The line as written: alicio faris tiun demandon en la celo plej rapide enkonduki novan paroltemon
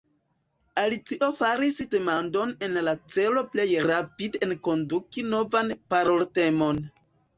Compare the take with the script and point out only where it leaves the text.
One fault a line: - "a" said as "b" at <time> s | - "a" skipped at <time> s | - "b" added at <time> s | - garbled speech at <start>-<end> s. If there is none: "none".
- "tiun" skipped at 1.8 s